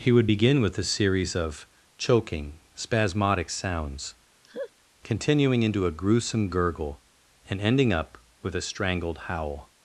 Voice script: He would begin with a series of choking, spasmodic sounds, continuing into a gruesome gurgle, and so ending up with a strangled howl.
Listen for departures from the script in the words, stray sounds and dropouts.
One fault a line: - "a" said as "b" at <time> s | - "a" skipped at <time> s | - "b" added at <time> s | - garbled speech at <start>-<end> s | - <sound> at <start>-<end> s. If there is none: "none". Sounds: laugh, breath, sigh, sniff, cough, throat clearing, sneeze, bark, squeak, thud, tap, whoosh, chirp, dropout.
- laugh at 4.4-4.7 s
- "so" skipped at 7.6 s